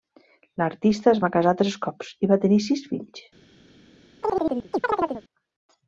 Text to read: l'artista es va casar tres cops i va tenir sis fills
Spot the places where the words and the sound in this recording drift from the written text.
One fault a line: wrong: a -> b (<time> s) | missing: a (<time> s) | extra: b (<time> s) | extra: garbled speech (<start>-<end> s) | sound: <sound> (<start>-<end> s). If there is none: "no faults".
sound: chirp (4.2-5.2 s)